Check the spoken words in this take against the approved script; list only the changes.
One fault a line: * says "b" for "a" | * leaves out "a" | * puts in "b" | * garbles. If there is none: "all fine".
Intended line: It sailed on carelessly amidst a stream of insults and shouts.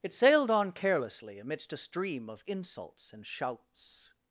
all fine